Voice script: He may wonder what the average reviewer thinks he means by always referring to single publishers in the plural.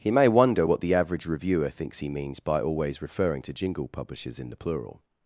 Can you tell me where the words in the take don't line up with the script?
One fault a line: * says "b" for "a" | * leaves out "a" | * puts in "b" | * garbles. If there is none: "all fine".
* says "jingle" for "single"